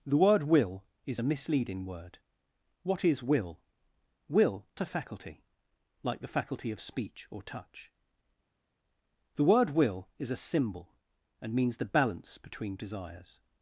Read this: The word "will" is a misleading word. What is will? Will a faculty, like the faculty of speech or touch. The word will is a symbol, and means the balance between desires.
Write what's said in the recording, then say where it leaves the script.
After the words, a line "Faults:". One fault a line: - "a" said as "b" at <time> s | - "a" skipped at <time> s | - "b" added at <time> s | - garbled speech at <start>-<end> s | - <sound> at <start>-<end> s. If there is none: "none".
The word "will" is a misleading word. What is will? Will a faculty, like the faculty of speech or touch. The word will is a symbol, and means the balance between desires.
Faults:
none